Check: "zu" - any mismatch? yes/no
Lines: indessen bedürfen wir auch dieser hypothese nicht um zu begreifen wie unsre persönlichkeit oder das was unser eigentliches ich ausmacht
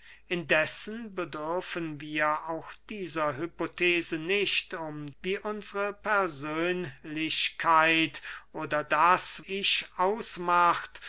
yes